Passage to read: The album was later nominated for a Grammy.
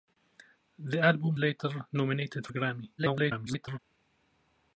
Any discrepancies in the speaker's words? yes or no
yes